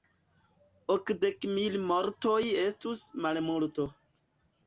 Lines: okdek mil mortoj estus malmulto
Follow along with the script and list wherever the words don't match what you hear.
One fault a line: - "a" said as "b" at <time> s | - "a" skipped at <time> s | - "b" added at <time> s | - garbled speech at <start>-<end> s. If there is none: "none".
none